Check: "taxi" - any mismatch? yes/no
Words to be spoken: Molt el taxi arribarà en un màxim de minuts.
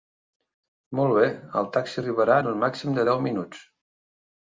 no